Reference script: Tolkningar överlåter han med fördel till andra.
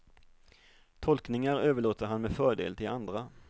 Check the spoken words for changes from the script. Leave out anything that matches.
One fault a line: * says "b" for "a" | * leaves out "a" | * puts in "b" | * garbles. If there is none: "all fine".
all fine